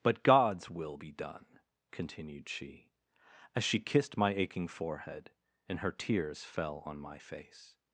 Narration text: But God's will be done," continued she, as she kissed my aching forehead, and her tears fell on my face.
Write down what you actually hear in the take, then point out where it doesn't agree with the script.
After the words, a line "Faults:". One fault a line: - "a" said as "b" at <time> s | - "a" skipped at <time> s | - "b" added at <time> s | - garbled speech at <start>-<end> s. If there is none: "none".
But God's will be done," continued she, as she kissed my aching forehead, and her tears fell on my face.
Faults:
none